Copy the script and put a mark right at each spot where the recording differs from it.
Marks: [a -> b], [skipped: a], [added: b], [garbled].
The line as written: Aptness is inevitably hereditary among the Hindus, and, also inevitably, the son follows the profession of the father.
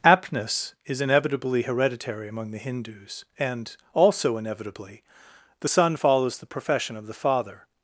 Aptness is inevitably hereditary among the Hindus, and, also inevitably, the son follows the profession of the father.